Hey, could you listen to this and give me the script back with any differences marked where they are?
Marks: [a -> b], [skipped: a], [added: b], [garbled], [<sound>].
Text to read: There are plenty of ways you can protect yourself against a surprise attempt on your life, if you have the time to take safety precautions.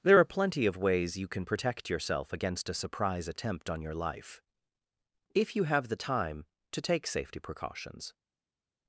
There are plenty of ways you can protect yourself against a surprise attempt on your life, if you have the time to take safety precautions.